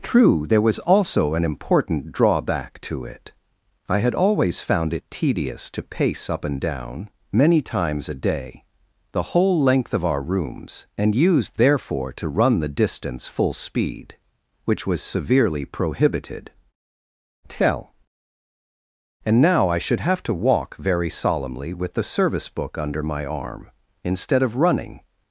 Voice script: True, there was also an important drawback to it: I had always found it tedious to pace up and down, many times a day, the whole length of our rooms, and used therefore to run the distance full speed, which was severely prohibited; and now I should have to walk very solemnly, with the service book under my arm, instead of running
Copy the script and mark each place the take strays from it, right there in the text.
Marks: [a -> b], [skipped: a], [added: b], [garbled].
True, there was also an important drawback to it: I had always found it tedious to pace up and down, many times a day, the whole length of our rooms, and used therefore to run the distance full speed, which was severely prohibited; [added: tell] and now I should have to walk very solemnly, with the service book under my arm, instead of running